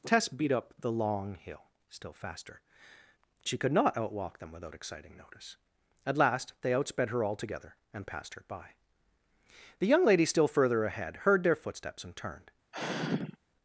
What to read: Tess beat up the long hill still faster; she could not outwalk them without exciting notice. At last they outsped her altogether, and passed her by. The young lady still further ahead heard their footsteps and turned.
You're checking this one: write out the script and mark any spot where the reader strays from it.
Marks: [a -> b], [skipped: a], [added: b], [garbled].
Tess beat up the long hill still faster; she could not outwalk them without exciting notice. At last they outsped her altogether, and passed her by. The young lady still further ahead heard their footsteps and turned.